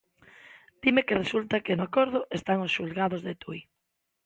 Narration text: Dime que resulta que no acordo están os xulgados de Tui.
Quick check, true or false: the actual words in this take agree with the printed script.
true